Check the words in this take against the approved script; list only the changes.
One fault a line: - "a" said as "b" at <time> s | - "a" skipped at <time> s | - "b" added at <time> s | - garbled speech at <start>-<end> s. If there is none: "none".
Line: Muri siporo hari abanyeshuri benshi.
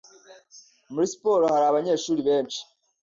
none